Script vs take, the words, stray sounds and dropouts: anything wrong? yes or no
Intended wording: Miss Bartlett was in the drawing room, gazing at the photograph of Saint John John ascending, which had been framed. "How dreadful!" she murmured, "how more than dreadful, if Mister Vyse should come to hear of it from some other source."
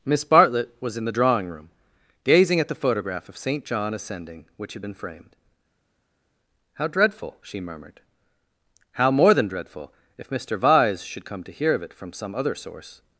yes